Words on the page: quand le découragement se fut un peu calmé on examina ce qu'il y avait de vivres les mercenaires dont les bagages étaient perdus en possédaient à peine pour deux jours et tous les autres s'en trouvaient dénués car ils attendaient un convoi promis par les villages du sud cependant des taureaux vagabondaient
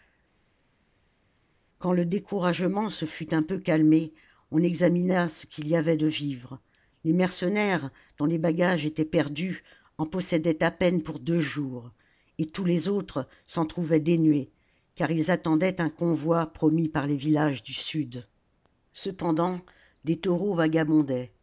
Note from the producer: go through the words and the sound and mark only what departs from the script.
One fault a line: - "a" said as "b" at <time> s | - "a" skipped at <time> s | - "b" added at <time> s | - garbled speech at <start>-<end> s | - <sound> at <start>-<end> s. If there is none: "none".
none